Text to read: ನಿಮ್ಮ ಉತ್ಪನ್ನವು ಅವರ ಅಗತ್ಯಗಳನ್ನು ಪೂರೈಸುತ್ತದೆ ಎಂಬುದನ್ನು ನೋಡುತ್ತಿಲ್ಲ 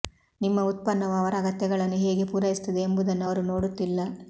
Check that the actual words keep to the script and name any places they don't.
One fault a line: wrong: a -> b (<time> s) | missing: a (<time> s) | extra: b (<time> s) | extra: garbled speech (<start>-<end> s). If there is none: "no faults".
extra: ಹೇಗೆ (2.0 s)
extra: ಅವರು (3.2 s)